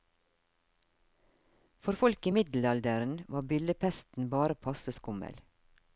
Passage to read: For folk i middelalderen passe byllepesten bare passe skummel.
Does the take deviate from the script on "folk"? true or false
false